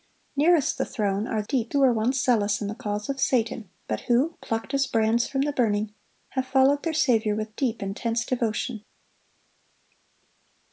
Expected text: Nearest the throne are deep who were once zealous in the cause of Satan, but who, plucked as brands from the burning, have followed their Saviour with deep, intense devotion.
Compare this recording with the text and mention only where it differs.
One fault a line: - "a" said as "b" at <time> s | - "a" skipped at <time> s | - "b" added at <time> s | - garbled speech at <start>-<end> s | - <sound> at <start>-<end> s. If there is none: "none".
none